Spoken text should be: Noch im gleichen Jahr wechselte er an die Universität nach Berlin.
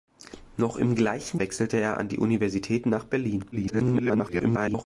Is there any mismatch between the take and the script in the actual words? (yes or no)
yes